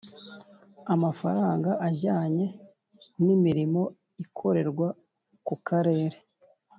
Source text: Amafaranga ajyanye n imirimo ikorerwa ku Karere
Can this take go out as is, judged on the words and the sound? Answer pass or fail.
pass